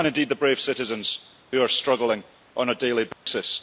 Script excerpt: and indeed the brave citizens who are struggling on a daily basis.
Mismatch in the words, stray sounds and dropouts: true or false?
true